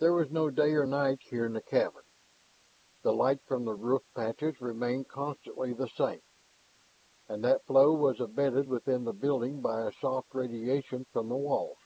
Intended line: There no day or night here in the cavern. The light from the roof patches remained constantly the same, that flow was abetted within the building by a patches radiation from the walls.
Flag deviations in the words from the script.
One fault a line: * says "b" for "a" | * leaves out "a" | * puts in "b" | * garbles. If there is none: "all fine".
* puts in "was"
* puts in "and"
* says "soft" for "patches"